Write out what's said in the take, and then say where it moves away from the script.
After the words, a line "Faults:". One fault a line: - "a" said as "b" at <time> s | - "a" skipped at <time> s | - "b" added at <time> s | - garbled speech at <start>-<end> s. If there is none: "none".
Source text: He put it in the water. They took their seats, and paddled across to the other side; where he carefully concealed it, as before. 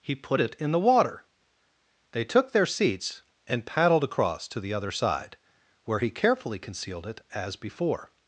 He put it in the water. They took their seats, and paddled across to the other side; where he carefully concealed it, as before.
Faults:
none